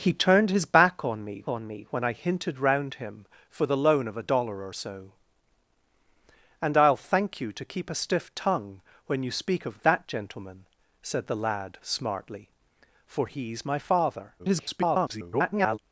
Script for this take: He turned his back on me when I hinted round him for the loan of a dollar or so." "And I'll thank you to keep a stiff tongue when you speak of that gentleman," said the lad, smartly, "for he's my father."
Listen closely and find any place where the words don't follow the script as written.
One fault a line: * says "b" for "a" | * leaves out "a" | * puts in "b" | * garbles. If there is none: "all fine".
* puts in "on me"
* garbles